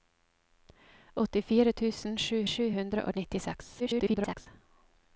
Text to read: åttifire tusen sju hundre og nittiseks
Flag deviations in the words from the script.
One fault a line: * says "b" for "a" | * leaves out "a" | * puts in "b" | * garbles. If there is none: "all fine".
* puts in "sju"
* garbles